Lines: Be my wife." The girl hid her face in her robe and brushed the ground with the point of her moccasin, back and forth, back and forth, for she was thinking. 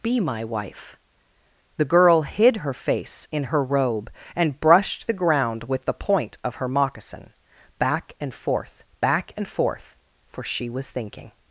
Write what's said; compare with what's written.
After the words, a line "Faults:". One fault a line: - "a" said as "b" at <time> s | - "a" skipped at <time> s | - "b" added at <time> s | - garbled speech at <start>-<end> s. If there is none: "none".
Be my wife." The girl hid her face in her robe and brushed the ground with the point of her moccasin, back and forth, back and forth, for she was thinking.
Faults:
none